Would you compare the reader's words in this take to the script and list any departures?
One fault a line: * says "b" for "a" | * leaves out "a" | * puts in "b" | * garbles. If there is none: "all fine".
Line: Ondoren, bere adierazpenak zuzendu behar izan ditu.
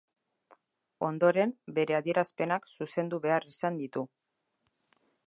all fine